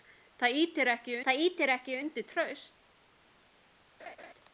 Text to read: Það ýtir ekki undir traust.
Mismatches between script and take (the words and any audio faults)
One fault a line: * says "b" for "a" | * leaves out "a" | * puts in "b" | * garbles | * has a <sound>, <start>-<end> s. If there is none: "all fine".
* puts in "það ýtir ekki"
* has a laugh, 4.0-4.3 s